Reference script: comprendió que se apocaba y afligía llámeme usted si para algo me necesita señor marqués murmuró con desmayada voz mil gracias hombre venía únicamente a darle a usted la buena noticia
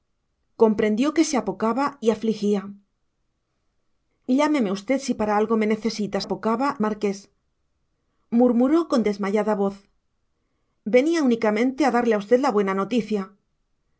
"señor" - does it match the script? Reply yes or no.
no